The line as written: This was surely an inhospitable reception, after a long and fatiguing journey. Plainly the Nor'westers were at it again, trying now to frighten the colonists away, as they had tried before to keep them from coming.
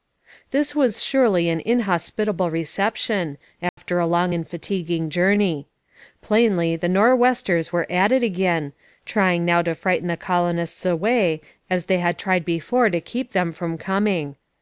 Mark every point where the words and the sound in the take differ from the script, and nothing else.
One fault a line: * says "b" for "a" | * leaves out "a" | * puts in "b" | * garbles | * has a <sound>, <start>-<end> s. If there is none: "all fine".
* has a dropout, 3.7-3.8 s